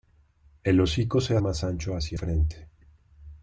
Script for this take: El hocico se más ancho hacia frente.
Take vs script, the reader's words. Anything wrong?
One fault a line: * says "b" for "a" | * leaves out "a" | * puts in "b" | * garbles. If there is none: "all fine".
all fine